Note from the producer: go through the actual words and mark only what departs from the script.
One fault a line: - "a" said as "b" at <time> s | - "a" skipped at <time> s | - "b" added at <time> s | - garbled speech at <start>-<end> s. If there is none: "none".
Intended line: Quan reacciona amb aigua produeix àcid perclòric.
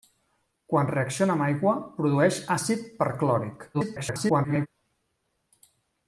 - garbled speech at 3.7-4.7 s